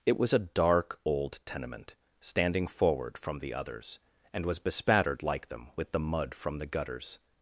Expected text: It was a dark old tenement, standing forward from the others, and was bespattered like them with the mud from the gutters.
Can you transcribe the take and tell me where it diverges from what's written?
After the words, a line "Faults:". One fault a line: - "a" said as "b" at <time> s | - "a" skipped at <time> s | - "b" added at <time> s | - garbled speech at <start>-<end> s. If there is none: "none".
It was a dark old tenement, standing forward from the others, and was bespattered like them with the mud from the gutters.
Faults:
none